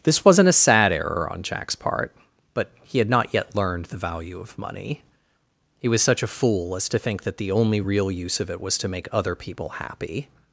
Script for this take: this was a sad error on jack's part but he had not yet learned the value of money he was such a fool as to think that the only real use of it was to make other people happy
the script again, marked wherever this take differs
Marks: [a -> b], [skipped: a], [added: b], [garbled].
this [was -> wasn't] a sad error on jack's part but he had not yet learned the value of money he was such a fool as to think that the only real use of it was to make other people happy